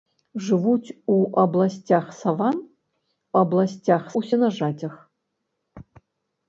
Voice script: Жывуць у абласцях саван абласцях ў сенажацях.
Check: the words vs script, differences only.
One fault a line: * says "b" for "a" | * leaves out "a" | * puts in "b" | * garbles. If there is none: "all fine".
all fine